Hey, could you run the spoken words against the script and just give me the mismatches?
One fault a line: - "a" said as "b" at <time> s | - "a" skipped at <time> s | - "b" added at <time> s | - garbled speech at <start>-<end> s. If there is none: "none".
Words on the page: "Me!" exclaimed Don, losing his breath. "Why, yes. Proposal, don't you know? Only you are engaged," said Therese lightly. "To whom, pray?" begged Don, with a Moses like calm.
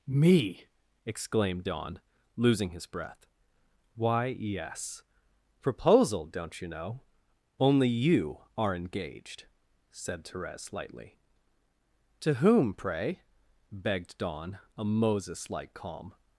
- "with" skipped at 14.6 s